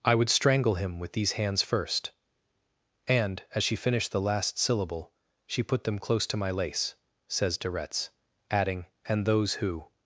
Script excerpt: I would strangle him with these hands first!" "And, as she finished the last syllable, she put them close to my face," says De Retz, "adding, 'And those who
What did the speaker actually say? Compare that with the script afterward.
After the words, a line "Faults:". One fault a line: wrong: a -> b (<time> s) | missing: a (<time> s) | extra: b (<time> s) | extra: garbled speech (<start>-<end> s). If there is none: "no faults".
I would strangle him with these hands first!" "And, as she finished the last syllable, she put them close to my lace," says De Retz, "adding, 'And those who
Faults:
wrong: face -> lace (6.5 s)